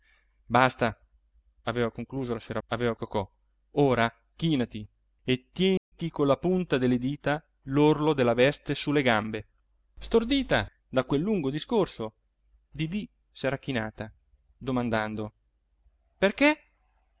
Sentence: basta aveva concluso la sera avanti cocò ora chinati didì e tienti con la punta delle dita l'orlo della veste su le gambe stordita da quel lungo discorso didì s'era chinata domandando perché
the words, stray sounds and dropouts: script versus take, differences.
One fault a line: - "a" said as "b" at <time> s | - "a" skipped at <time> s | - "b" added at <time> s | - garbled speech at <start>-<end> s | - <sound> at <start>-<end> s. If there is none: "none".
- "avanti" said as "aveva" at 2.7 s
- "didì" skipped at 4.9 s
- dropout at 5.8-5.9 s